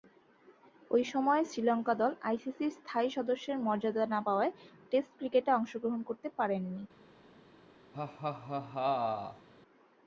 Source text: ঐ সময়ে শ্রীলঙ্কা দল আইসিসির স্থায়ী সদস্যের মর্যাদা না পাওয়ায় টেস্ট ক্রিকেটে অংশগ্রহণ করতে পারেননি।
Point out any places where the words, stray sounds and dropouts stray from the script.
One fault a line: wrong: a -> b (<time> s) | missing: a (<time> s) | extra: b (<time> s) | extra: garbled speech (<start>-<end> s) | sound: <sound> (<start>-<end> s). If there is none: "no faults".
sound: laugh (7.9-9.5 s)